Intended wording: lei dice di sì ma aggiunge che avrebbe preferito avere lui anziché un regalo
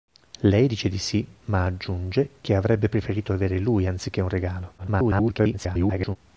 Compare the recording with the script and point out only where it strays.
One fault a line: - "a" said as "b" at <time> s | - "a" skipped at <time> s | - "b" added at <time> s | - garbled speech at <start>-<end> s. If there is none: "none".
- garbled speech at 4.8-6.2 s